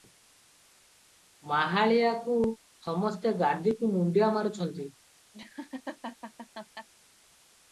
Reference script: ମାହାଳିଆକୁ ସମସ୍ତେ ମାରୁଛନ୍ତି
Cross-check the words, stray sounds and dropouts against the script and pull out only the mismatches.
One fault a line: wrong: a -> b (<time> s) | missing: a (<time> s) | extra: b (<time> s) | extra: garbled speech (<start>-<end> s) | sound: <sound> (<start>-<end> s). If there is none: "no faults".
extra: ଗାଦିକୁ ମୁଣ୍ତିଆ (3.4 s)
sound: laugh (5.3-6.9 s)